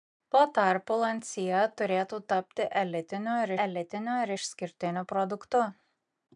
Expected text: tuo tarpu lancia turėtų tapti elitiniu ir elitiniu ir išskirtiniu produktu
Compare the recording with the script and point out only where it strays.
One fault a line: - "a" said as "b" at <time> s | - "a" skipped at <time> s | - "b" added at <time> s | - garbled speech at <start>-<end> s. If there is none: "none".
none